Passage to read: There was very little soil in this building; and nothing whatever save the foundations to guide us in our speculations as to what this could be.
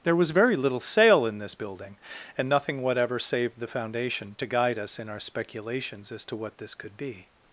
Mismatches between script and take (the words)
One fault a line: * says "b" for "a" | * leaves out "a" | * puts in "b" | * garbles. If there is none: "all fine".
* says "sail" for "soil"
* says "foundation" for "foundations"